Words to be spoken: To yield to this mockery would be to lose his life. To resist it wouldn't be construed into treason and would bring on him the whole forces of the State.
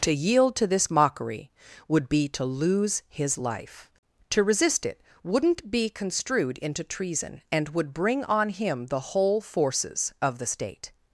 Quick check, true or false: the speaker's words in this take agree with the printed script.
true